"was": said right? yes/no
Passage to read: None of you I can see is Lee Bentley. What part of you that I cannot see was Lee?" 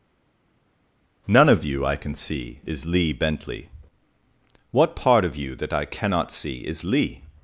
no